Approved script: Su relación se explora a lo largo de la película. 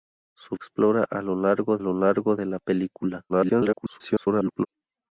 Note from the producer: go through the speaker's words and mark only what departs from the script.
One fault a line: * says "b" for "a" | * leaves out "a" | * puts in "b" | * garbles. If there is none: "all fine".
* says "explora a lo largo" for "relación se explora a"
* garbles